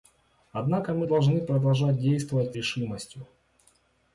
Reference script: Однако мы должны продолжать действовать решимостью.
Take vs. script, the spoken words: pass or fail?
pass